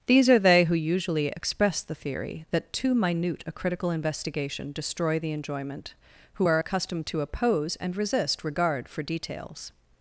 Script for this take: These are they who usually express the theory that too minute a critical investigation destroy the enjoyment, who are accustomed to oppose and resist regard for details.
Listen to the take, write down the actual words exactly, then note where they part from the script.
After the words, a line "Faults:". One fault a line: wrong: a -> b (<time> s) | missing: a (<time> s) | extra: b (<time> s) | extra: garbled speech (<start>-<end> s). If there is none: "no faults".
These are they who usually express the theory that too minute a critical investigation destroy the enjoyment, who are accustomed to oppose and resist regard for details.
Faults:
no faults